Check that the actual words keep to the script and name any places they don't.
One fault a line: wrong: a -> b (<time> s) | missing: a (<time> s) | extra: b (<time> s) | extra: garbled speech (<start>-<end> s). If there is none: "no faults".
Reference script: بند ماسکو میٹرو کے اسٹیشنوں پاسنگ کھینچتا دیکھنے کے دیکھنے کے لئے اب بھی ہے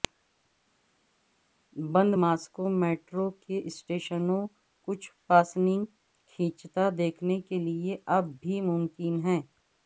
extra: کچھ (4.9 s)
missing: دیکھنے کے (7.6 s)
extra: ممکن (8.6 s)